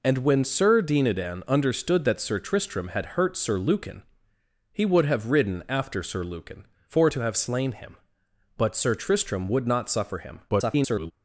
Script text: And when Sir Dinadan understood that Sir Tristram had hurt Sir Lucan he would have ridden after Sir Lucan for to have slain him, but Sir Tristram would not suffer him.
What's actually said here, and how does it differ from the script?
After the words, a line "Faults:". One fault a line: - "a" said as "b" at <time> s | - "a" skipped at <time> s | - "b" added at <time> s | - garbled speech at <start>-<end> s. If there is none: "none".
And when Sir Dinadan understood that Sir Tristram had hurt Sir Lucan he would have ridden after Sir Lucan for to have slain him, but Sir Tristram would not suffer him. [garbled]
Faults:
- garbled speech at 10.5-11.1 s